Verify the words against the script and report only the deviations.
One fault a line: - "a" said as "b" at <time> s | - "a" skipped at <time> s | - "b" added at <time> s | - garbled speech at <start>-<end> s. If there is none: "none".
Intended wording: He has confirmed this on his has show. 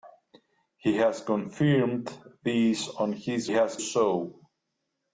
none